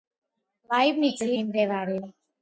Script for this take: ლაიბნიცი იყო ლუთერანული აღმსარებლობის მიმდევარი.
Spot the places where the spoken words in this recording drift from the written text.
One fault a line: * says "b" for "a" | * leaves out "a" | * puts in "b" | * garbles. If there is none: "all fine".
* leaves out "იყო ლუთერანული აღმსარებლობის"